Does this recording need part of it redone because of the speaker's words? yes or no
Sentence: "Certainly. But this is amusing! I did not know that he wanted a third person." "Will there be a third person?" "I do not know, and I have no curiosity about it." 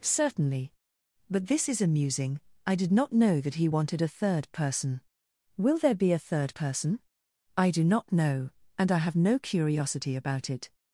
no